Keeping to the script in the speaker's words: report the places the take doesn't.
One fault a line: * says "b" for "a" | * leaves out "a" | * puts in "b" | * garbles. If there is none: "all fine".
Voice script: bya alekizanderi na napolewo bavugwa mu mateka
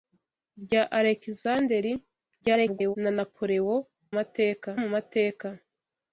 * garbles
* says "mateka" for "bavugwa"